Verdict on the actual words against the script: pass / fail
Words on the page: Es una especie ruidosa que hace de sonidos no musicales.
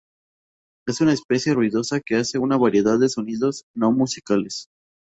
fail